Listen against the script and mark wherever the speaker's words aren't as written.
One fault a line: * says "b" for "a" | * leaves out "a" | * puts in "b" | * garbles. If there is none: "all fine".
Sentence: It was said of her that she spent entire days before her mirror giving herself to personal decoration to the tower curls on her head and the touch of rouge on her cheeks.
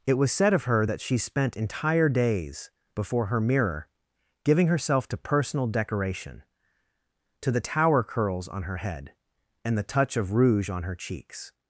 all fine